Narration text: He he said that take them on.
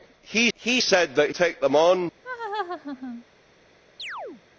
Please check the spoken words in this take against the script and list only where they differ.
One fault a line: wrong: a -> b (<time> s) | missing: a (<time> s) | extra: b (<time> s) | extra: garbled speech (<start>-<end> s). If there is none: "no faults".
no faults